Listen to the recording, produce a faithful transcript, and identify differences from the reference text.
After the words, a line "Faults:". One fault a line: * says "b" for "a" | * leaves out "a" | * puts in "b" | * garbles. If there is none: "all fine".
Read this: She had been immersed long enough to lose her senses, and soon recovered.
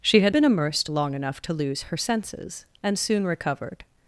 She had been immersed long enough to lose her senses, and soon recovered.
Faults:
all fine